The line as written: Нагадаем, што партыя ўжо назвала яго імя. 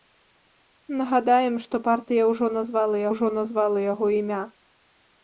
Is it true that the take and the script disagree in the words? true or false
true